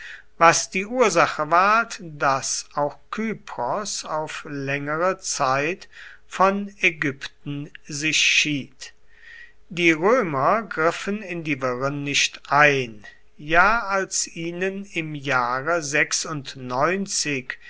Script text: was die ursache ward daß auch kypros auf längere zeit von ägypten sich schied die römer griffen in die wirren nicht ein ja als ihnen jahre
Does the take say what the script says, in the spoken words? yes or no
no